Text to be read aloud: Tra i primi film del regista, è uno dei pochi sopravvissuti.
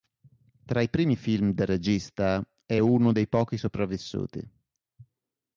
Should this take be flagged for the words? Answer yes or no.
no